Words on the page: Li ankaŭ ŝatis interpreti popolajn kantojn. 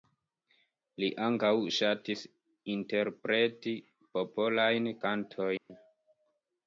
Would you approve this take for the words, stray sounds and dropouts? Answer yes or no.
no